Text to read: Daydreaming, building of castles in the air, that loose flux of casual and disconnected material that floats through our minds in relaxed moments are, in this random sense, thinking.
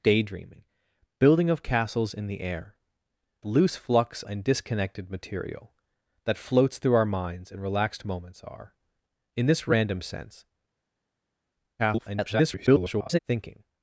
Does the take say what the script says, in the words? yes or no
no